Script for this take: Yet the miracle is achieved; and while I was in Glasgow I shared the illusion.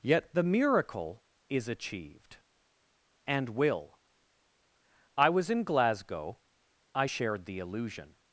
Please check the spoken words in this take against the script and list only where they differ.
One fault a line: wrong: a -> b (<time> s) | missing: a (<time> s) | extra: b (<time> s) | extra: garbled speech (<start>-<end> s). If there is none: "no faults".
wrong: while -> will (3.5 s)